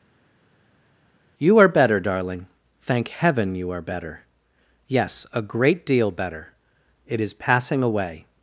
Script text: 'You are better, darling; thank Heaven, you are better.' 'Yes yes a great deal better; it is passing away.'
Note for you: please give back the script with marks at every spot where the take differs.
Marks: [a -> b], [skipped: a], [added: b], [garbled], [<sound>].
'You are better, darling; thank Heaven, you are better.' 'Yes [skipped: yes] a great deal better; it is passing away.'